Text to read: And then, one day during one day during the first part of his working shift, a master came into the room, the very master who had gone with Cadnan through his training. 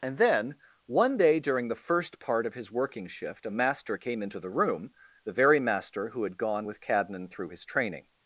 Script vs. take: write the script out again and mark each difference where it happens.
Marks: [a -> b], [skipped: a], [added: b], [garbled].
And then, one day during [skipped: one day during] the first part of his working shift, a master came into the room, the very master who had gone with Cadnan through his training.